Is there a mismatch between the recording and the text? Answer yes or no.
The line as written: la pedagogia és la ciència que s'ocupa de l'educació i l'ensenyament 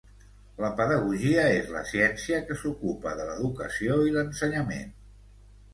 no